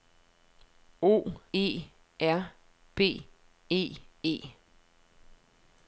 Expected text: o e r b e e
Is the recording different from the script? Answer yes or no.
no